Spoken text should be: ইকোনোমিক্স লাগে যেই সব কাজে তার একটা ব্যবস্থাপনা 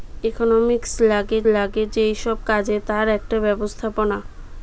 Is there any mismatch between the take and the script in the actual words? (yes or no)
yes